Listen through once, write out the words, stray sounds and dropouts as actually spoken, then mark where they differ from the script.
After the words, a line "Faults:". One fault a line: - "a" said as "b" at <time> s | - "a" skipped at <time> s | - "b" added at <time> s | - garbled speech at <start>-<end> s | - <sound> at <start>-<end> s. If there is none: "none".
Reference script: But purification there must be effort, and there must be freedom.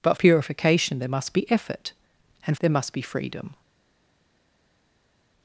But purification there must be effort, and there must be freedom.
Faults:
none